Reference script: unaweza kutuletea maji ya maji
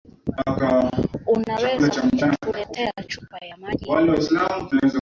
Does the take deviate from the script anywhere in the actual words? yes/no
yes